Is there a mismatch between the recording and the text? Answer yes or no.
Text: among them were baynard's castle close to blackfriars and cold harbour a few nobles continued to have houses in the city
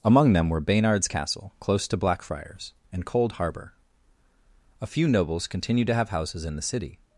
no